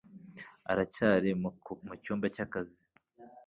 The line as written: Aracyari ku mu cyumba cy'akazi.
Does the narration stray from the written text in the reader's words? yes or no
no